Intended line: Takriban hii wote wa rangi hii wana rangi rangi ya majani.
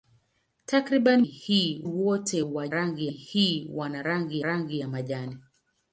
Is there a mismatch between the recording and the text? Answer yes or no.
no